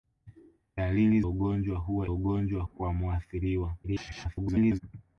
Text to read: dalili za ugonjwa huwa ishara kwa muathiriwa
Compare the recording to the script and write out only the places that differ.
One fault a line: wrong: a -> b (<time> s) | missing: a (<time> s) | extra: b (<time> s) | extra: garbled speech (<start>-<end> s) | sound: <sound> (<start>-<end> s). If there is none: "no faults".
missing: za (1.2 s)
wrong: ishara -> ugonjwa (2.1 s)
extra: garbled speech (3.8-4.8 s)